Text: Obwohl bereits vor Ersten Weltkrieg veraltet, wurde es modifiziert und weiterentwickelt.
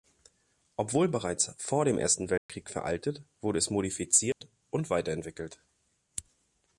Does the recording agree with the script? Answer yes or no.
no